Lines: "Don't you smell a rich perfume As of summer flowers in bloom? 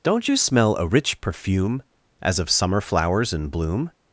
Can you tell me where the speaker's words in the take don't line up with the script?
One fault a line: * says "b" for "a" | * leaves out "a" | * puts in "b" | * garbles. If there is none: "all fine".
all fine